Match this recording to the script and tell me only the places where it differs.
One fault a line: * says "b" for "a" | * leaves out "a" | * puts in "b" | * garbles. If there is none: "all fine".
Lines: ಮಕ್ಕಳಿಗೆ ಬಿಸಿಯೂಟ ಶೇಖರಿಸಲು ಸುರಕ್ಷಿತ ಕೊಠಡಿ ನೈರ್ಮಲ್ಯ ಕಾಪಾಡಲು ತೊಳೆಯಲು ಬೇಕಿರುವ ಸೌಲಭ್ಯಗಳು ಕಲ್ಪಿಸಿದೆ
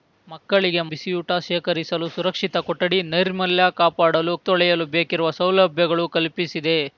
all fine